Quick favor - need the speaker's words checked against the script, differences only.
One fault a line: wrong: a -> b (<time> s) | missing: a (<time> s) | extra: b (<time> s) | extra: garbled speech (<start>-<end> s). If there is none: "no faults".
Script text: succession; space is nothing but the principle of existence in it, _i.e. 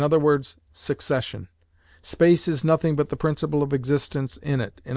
no faults